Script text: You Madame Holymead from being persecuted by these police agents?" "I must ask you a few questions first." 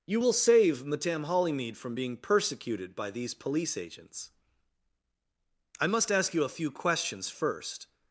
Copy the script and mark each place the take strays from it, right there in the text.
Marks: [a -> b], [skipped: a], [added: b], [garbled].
You [added: will save] Madame Holymead from being persecuted by these police agents?" "I must ask you a few questions first."